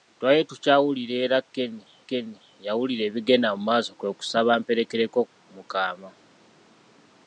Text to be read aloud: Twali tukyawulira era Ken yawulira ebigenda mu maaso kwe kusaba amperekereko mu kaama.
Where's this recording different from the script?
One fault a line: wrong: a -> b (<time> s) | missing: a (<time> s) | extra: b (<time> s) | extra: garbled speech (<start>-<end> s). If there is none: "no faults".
extra: Ken (2.1 s)